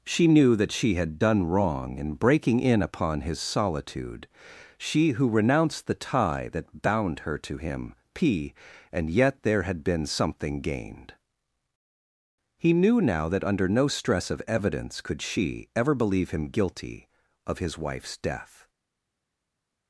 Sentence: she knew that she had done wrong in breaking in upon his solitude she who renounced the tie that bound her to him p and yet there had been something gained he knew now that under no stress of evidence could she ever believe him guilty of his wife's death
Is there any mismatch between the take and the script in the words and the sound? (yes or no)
no